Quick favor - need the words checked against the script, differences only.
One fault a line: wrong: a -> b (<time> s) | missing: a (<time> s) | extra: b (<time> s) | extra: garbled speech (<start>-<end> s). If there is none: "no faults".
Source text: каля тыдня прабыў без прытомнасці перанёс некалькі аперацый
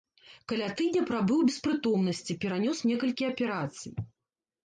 no faults